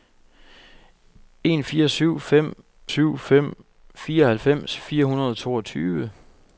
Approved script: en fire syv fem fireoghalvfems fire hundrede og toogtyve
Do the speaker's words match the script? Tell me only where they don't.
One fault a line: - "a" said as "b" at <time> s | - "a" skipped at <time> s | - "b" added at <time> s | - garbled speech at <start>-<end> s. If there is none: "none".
- "syv fem" added at 2.9 s